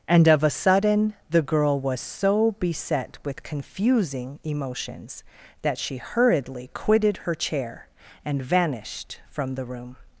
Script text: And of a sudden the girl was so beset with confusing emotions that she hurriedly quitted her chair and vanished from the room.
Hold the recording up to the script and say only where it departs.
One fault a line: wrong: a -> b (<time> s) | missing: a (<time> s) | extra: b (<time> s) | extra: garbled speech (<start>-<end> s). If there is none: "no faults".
no faults